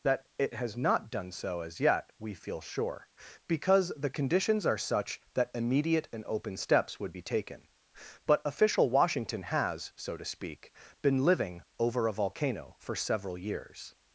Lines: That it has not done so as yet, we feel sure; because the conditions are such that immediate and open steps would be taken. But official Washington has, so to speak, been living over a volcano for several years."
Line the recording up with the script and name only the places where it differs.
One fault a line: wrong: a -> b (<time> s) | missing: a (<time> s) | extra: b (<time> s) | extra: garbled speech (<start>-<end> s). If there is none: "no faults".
no faults